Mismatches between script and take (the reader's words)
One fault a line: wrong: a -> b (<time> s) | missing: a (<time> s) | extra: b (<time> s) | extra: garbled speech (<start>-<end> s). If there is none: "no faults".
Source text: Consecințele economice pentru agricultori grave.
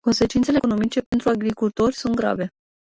extra: sunt (1.9 s)